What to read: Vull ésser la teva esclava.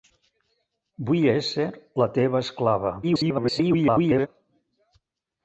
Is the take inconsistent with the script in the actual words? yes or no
yes